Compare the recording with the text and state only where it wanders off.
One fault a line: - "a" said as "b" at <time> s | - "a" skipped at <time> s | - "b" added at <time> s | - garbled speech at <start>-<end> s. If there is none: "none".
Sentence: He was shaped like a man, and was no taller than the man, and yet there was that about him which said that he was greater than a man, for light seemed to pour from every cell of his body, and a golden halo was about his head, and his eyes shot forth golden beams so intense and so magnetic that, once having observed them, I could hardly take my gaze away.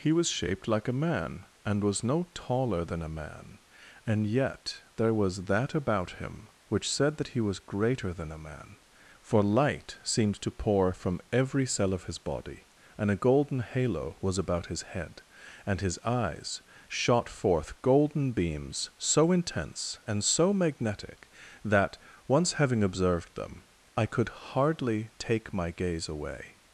- "the" said as "a" at 3.0 s